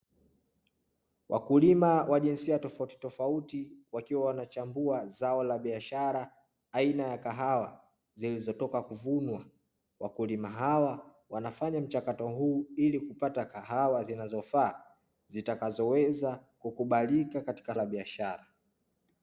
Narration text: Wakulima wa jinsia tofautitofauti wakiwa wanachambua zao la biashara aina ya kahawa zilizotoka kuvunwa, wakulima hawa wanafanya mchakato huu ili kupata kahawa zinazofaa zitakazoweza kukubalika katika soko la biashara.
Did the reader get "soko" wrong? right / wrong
wrong